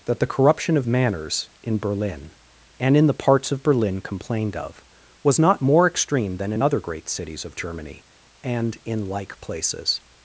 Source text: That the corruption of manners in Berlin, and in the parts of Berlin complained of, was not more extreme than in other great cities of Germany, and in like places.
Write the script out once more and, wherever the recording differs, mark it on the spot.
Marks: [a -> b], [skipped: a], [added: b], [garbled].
That the corruption of manners in Berlin, and in the parts of Berlin complained of, was not more extreme than in other great cities of Germany, and in like places.